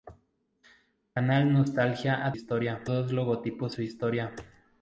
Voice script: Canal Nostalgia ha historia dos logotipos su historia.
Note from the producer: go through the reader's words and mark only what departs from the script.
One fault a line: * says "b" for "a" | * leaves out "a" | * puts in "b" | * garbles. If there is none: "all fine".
all fine